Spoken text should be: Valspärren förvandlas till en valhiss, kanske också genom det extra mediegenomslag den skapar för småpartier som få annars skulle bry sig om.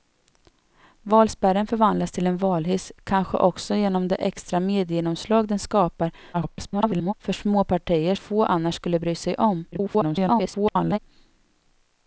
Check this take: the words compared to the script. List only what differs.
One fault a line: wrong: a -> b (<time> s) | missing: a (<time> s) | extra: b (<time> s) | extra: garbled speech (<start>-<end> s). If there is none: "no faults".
extra: garbled speech (6.3-7.1 s)
missing: som (8.2 s)
extra: garbled speech (9.7-11.0 s)